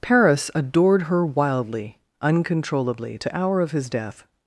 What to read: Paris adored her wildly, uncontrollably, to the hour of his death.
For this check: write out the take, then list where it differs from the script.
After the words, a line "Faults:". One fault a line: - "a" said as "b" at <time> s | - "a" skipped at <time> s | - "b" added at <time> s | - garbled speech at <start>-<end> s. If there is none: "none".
Paris adored her wildly, uncontrollably, to hour of his death.
Faults:
- "the" skipped at 3.4 s